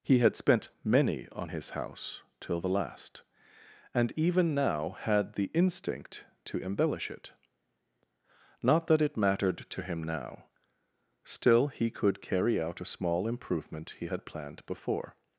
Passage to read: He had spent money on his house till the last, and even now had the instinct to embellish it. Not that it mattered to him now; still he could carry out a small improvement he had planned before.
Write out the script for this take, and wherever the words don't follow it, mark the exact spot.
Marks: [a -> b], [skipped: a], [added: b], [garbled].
He had spent [money -> many] on his house till the last, and even now had the instinct to embellish it. Not that it mattered to him now; still he could carry out a small improvement he had planned before.